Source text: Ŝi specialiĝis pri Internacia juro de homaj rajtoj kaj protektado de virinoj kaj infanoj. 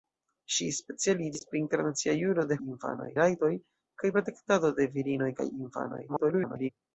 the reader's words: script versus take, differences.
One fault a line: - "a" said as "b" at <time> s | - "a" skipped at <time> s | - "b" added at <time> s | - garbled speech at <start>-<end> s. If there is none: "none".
- "homaj" said as "infanoj" at 2.6 s
- garbled speech at 6.1-6.7 s